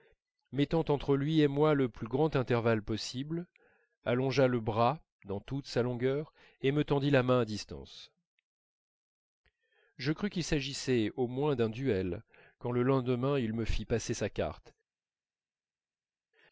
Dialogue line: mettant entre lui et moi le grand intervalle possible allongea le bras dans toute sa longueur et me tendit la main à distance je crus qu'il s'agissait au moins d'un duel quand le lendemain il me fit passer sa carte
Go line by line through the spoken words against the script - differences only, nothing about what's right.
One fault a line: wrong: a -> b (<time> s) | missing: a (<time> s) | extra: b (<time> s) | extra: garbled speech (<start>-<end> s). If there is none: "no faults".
extra: plus (1.9 s)